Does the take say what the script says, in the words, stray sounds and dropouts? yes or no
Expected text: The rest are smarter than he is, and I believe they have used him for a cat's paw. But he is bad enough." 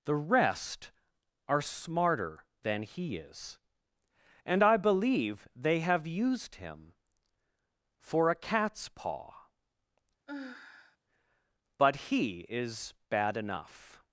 no